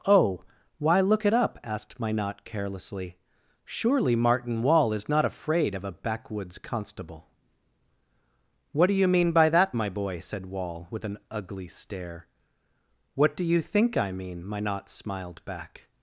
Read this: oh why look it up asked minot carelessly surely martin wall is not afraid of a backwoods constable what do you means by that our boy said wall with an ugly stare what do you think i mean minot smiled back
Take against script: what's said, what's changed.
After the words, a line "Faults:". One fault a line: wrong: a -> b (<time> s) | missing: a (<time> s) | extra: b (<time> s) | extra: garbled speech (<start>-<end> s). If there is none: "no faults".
oh why look it up asked minot carelessly surely martin wall is not afraid of a backwoods constable what do you mean by that my boy said wall with an ugly stare what do you think i mean minot smiled back
Faults:
wrong: means -> mean (9.1 s)
wrong: our -> my (9.7 s)